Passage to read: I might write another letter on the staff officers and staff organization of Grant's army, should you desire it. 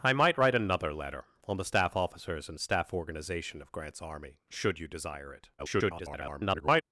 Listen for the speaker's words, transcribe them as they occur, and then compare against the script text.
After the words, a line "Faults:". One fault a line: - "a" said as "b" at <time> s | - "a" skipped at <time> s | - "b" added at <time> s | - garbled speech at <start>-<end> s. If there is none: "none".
I might write another letter on the staff officers and staff organization of Grant's army, should you desire it. [garbled]
Faults:
- garbled speech at 5.6-6.8 s